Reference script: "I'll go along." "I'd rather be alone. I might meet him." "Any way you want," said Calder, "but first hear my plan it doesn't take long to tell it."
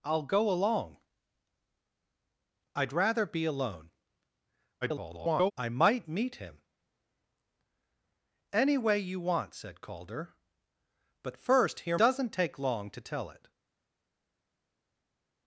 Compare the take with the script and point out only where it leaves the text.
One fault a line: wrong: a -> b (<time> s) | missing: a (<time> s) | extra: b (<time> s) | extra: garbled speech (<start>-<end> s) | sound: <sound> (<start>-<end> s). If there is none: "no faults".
extra: garbled speech (4.8-5.5 s)
missing: my plan it (12.0 s)